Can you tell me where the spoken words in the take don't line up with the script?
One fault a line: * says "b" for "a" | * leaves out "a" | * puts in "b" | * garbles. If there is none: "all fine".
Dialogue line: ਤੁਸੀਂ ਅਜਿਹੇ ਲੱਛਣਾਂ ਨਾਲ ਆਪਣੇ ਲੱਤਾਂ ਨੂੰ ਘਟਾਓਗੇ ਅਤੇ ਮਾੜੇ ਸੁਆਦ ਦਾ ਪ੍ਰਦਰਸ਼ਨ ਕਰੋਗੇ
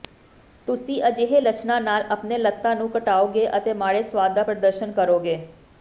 all fine